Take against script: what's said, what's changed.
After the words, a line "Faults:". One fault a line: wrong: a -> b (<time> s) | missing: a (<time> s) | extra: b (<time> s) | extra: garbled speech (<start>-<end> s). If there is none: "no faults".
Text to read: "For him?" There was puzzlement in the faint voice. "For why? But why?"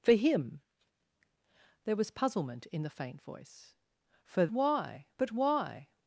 "For him?" There was puzzlement in the faint voice. "For why? But why?"
Faults:
no faults